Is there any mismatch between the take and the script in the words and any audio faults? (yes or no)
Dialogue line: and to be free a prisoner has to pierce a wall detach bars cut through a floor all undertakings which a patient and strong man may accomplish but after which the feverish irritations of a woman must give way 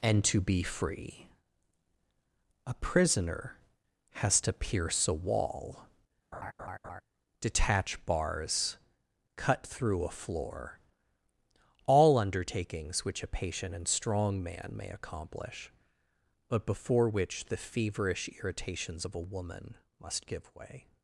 yes